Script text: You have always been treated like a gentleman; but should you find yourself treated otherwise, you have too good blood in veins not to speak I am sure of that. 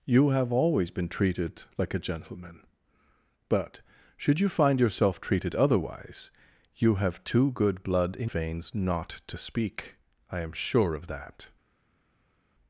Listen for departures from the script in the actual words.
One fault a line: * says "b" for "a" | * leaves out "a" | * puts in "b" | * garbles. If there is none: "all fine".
all fine